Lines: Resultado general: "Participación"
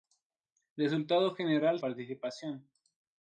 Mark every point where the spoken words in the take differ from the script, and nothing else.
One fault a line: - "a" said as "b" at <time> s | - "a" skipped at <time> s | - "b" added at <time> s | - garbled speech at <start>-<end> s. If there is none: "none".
none